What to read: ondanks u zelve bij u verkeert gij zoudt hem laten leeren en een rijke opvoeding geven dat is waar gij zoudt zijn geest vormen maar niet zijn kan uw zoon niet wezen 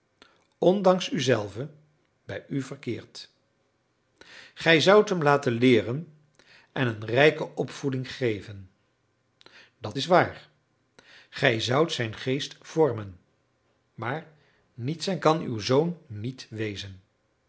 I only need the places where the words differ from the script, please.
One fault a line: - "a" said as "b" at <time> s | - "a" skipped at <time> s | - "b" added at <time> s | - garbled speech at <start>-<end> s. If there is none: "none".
none